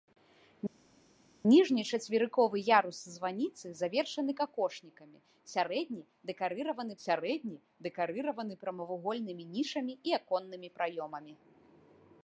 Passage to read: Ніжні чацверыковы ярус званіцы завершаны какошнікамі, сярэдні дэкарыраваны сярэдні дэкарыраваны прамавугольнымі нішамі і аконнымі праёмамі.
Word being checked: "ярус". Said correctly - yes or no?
yes